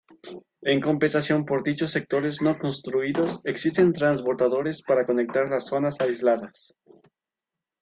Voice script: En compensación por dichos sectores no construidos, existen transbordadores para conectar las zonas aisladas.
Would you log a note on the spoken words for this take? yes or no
no